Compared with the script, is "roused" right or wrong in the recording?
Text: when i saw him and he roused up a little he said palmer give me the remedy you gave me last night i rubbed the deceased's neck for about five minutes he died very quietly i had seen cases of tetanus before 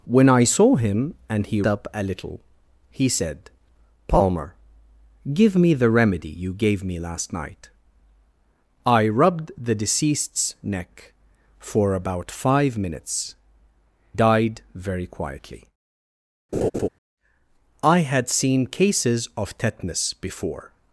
wrong